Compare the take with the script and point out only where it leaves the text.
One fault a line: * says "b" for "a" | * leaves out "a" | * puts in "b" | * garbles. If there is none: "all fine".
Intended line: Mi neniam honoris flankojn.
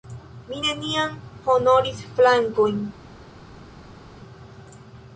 all fine